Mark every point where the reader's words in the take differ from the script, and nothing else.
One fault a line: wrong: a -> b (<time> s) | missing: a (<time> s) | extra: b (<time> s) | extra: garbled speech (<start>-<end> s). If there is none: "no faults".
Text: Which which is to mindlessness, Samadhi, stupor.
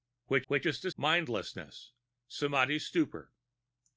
no faults